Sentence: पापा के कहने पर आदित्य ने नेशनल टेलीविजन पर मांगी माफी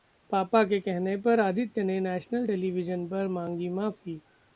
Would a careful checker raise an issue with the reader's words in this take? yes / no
no